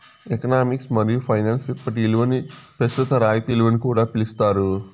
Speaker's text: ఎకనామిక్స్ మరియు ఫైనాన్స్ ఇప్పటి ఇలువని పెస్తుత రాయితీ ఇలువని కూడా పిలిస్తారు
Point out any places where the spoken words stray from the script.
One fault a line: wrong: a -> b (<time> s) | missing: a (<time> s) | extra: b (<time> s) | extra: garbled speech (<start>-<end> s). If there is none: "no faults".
no faults